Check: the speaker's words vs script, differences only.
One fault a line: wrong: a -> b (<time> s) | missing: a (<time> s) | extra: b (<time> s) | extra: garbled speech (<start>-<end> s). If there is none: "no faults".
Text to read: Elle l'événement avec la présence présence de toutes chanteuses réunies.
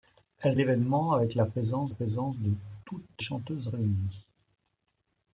no faults